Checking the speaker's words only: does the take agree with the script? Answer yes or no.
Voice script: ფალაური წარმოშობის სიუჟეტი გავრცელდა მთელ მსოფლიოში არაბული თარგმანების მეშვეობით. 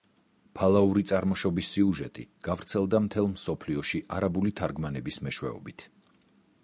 yes